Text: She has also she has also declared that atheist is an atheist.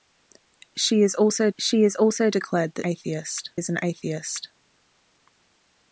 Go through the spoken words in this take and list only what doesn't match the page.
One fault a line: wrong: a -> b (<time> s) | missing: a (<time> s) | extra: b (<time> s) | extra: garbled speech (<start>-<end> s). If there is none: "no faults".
no faults